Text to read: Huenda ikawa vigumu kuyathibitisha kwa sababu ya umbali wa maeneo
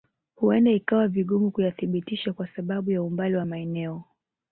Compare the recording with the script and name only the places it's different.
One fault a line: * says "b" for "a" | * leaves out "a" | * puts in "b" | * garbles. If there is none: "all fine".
all fine